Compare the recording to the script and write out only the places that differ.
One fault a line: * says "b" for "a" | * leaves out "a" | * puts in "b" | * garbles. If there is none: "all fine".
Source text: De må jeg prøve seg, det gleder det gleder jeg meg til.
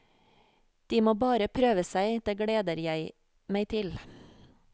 * says "bare" for "jeg"
* leaves out "det gleder"